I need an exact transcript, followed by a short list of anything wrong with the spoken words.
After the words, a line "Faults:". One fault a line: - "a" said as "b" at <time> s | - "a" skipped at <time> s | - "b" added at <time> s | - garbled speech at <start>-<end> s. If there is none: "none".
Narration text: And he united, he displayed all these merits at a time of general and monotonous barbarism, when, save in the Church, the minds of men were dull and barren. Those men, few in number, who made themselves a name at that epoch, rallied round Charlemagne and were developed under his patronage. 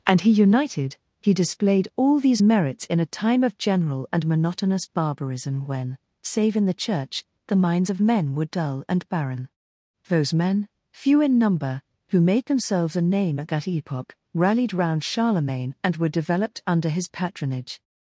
And he united, he displayed all these merits in a time of general and monotonous barbarism, when, save in the Church, the minds of men were dull and barren. Those men, few in number, who made themselves a name at that epoch, rallied round Charlemagne and were developed under his patronage.
Faults:
- "at" said as "in" at 2.9 s